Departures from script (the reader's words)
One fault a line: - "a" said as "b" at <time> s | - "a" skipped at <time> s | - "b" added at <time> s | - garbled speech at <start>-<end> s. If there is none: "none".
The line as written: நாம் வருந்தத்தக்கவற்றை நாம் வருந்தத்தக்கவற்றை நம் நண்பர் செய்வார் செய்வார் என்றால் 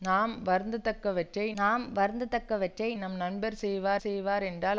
none